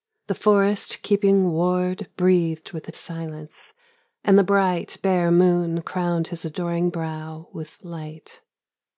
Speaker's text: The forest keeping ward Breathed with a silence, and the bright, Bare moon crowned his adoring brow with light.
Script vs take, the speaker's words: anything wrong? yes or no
no